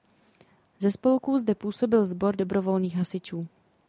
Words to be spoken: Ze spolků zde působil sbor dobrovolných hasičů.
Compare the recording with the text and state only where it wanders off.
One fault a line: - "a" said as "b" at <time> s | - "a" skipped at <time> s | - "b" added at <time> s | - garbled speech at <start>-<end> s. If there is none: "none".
none